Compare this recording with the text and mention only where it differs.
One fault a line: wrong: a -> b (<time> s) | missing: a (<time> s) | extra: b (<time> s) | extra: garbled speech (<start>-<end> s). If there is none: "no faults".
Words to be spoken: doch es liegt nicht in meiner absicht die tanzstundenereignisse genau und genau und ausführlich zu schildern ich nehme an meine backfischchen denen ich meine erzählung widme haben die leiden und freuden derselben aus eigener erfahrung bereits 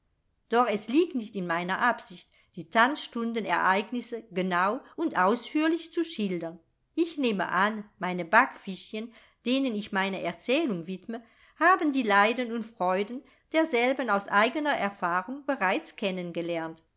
missing: genau und (5.2 s)